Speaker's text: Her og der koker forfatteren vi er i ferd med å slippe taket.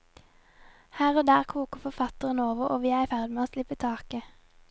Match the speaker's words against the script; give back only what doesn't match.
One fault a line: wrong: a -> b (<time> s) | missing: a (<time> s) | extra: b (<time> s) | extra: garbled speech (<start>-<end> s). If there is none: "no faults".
extra: over og (2.4 s)